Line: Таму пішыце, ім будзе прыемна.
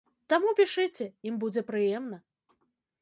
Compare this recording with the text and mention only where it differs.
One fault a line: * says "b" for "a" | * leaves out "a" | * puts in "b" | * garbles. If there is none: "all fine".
all fine